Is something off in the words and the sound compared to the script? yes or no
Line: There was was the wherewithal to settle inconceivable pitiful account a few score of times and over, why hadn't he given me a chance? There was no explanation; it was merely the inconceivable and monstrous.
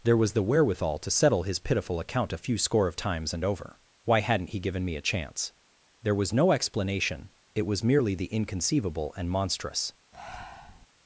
yes